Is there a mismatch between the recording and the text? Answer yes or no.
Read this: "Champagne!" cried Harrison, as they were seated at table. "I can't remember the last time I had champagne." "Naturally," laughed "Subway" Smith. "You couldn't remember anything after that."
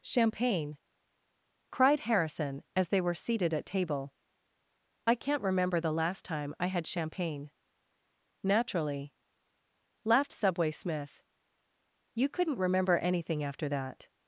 no